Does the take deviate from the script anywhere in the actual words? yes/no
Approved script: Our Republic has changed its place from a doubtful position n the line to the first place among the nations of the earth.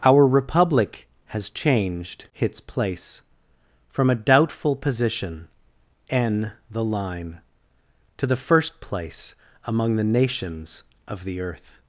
no